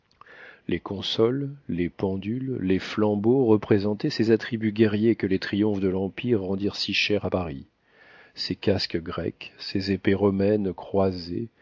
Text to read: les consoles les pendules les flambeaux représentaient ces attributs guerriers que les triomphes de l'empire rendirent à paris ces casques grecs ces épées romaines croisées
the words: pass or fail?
fail